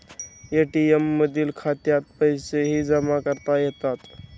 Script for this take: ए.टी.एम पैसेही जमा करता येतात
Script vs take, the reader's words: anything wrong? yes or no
yes